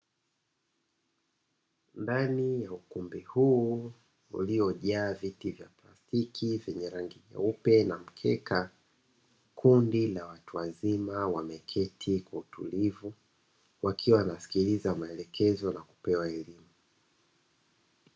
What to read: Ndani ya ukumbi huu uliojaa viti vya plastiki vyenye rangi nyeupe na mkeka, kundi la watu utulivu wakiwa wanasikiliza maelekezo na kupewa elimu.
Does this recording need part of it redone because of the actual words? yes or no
yes